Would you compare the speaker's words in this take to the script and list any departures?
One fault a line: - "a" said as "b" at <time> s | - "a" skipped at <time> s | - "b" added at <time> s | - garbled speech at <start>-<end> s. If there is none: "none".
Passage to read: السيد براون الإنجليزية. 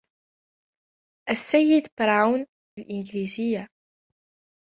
none